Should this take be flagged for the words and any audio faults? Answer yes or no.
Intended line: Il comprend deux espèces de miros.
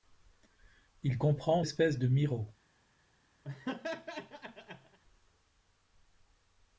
yes